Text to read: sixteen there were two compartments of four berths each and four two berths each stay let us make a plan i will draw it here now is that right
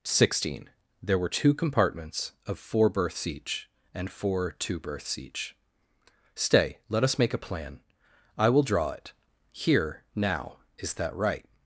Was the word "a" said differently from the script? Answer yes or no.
no